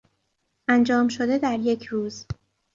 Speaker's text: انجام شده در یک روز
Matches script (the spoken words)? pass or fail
pass